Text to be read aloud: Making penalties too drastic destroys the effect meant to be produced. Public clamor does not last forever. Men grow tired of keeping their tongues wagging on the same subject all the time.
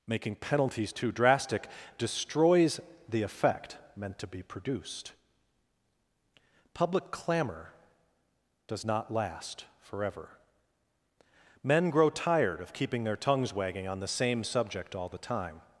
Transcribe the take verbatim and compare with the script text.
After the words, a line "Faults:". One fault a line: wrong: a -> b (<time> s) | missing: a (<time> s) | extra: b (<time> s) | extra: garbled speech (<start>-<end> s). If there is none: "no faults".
Making penalties too drastic destroys the effect meant to be produced. Public clamor does not last forever. Men grow tired of keeping their tongues wagging on the same subject all the time.
Faults:
no faults